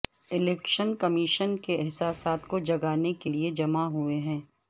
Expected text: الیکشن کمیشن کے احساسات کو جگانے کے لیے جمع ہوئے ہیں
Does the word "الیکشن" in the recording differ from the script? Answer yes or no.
no